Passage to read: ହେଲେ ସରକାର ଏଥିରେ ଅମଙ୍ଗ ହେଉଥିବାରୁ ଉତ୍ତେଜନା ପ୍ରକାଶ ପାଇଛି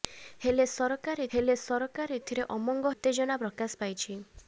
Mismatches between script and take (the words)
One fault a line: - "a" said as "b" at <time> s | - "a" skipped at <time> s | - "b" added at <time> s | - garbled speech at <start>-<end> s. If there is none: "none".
- "ହେଲେ ସରକାର" added at 1.3 s
- "ହେଉଥିବାରୁ" skipped at 2.9 s